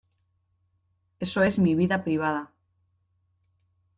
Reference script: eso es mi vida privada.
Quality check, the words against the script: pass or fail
pass